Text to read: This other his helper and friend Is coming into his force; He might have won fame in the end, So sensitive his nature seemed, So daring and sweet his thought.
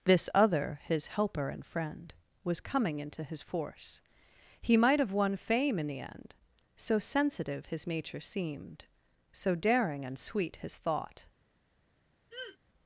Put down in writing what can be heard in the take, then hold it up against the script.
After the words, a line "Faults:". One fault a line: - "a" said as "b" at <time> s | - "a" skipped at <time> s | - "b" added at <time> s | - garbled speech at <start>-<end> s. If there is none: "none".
This other his helper and friend Was coming into his force; He might have won fame in the end, So sensitive his nature seemed, So daring and sweet his thought.
Faults:
- "Is" said as "Was" at 2.4 s